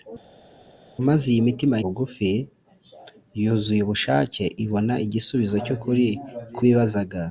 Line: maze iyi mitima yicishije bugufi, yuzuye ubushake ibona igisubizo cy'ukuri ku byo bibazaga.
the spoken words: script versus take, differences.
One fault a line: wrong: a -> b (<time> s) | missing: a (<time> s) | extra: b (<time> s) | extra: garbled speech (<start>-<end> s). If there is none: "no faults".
missing: yicishije (1.7 s)
missing: byo (6.6 s)